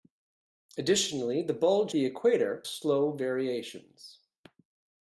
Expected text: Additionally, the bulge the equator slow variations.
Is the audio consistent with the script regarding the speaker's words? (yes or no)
yes